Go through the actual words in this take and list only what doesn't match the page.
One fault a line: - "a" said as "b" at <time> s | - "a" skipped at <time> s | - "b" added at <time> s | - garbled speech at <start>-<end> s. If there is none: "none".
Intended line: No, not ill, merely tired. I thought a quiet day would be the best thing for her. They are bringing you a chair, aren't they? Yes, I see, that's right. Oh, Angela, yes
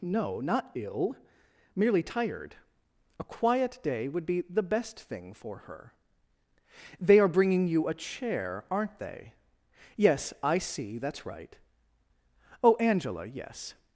- "I thought" skipped at 2.5 s